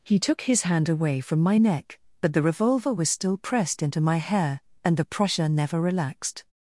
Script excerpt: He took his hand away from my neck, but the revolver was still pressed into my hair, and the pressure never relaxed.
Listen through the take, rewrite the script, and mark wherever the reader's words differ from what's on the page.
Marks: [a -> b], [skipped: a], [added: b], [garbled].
He took his hand away from my neck, but the revolver was still pressed into my hair, and the pressure never relaxed.